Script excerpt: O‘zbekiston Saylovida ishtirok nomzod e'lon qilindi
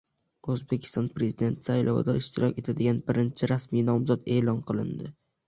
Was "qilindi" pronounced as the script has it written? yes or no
yes